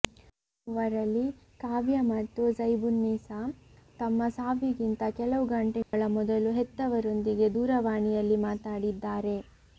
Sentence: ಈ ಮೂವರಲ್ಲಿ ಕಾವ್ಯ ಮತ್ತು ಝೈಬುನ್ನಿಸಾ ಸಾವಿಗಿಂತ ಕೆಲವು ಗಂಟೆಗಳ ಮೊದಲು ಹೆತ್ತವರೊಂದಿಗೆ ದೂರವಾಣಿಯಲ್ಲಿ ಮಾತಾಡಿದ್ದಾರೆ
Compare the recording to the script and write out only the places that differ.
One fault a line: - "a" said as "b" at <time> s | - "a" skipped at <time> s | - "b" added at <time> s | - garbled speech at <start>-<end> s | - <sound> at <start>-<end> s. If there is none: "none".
- "ತಮ್ಮ" added at 4.0 s
- dropout at 5.8-5.9 s